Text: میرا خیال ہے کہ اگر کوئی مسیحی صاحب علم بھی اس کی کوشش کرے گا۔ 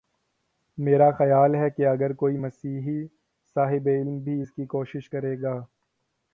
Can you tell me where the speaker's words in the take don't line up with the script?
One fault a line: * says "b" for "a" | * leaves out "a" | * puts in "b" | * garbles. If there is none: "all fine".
all fine